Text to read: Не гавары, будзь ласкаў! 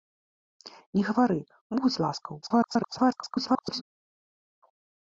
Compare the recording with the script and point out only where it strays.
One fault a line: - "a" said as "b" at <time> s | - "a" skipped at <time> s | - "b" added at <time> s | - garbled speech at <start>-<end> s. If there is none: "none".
- garbled speech at 2.4-3.8 s